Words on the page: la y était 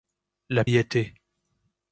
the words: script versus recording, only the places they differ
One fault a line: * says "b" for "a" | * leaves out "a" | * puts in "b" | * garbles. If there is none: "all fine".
all fine